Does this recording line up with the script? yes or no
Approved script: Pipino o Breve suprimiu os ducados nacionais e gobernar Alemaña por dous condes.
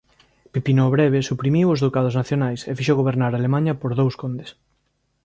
no